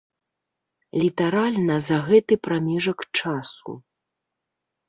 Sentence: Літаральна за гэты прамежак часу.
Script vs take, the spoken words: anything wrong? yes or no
no